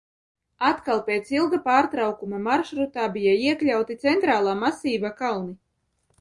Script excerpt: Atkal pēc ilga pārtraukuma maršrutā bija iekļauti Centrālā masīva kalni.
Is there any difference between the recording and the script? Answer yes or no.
no